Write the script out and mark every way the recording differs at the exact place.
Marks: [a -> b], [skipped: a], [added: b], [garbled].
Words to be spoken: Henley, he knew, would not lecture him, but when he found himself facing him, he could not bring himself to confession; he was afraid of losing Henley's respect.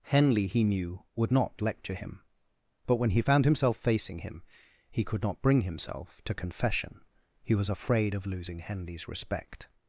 Henley, he knew, would not lecture him, but when he found himself facing him, he could not bring himself to confession; he was afraid of losing Henley's respect.